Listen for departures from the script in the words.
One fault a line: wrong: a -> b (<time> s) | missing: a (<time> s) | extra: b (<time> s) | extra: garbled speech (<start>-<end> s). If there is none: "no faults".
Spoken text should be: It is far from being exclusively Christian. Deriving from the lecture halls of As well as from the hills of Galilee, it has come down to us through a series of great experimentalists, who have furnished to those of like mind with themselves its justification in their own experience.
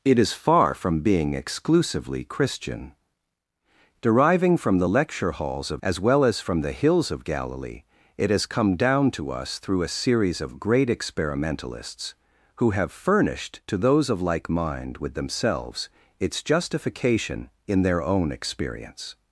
no faults